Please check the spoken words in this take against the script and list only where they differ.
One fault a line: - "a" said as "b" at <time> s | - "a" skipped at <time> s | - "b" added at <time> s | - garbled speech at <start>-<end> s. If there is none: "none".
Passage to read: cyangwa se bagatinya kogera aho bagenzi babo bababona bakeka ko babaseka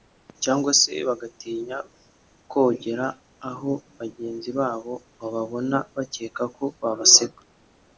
none